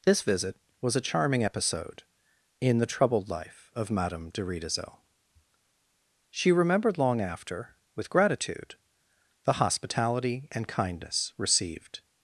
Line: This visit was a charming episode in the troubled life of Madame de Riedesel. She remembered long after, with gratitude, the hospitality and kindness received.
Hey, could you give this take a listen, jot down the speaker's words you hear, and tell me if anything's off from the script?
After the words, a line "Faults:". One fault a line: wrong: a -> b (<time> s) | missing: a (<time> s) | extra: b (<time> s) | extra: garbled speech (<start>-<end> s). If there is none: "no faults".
This visit was a charming episode in the troubled life of Madame de Riedesel. She remembered long after, with gratitude, the hospitality and kindness received.
Faults:
no faults